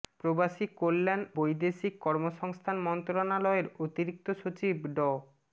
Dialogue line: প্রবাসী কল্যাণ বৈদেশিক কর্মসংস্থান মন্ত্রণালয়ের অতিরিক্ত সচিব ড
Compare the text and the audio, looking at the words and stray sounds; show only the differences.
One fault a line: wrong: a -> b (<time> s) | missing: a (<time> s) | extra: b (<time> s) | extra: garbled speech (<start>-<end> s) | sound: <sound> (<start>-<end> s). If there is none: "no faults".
no faults